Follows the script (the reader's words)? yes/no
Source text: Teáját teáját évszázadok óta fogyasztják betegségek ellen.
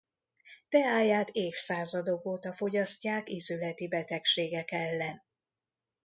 no